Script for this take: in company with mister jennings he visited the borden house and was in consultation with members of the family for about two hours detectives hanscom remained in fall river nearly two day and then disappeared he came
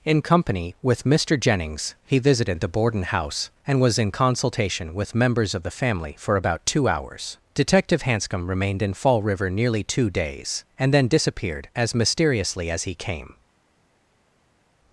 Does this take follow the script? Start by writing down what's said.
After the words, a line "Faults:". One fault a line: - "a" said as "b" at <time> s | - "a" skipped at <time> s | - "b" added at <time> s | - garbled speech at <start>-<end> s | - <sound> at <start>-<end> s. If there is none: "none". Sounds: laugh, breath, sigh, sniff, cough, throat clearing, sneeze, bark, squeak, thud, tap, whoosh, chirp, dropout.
in company with mister jennings he visited the borden house and was in consultation with members of the family for about two hours detective hanscom remained in fall river nearly two days and then disappeared as mysteriously as he came
Faults:
- "detectives" said as "detective" at 7.5 s
- "day" said as "days" at 10.1 s
- "as mysteriously as" added at 11.8 s